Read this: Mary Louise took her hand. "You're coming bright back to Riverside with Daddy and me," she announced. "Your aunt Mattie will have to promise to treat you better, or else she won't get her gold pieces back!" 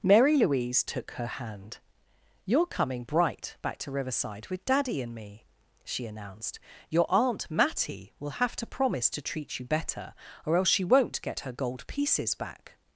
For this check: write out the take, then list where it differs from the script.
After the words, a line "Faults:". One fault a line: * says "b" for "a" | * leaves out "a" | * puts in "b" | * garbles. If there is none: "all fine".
Mary Louise took her hand. "You're coming bright back to Riverside with Daddy and me," she announced. "Your aunt Mattie will have to promise to treat you better, or else she won't get her gold pieces back!"
Faults:
all fine